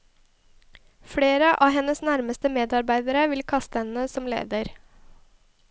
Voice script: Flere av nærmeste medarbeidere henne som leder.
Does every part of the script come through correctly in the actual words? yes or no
no